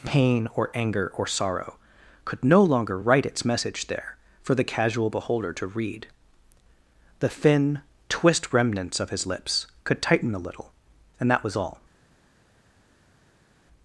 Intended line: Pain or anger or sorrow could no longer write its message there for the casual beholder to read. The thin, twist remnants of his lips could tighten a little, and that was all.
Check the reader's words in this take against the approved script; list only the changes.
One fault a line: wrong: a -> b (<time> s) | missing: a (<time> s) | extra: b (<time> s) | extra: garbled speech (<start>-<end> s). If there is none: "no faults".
no faults